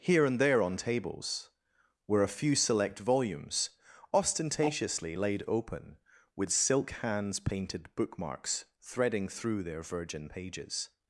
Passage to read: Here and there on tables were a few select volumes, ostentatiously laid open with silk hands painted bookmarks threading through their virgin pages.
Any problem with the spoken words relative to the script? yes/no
no